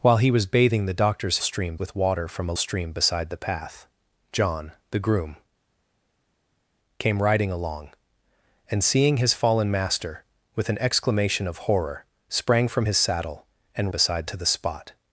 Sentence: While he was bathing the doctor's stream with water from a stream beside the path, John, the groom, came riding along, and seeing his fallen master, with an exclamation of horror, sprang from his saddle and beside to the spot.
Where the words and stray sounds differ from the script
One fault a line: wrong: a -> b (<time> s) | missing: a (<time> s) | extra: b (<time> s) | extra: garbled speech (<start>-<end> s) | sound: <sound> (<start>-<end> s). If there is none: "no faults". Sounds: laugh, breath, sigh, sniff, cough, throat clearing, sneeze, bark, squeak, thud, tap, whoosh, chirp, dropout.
no faults